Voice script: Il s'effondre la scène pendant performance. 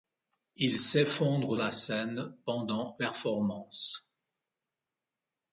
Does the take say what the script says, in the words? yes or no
yes